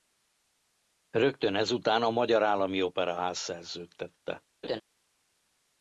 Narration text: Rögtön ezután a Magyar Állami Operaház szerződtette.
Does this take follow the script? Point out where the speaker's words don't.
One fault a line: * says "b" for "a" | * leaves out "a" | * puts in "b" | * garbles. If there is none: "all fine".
all fine